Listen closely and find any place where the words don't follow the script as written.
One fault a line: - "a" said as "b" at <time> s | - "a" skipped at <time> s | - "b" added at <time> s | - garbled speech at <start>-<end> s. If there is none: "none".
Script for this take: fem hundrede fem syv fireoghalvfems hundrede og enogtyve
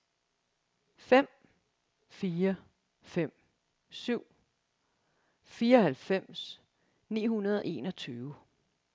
- "hundrede" said as "fire" at 2.1 s
- "ni" added at 7.1 s